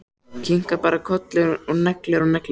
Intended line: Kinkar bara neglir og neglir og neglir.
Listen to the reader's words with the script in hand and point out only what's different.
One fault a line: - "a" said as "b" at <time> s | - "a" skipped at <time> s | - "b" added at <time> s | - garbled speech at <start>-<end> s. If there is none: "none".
- "neglir" said as "kolli" at 1.1 s